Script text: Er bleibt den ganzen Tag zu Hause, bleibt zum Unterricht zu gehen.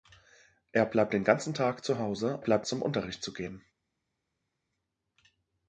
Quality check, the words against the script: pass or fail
pass